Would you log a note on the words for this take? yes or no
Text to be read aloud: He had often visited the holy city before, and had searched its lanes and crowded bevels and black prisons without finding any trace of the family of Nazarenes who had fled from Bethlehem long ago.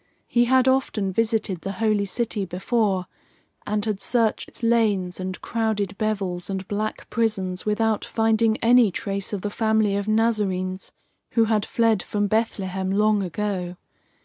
no